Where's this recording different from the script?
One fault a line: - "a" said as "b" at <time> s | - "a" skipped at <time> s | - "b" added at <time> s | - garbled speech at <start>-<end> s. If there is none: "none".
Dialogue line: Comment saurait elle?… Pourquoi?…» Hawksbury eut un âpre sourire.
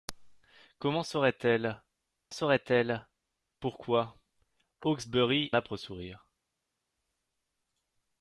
- "saurait elle" added at 2.3 s
- "eut un" skipped at 5.5 s